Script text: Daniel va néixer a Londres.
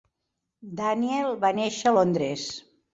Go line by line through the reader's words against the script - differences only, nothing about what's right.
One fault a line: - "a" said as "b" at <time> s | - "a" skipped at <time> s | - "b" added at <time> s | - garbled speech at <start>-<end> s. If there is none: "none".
none